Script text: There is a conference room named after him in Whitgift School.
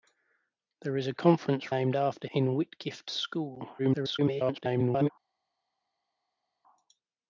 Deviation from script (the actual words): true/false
true